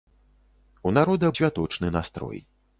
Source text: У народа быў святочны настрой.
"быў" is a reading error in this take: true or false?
true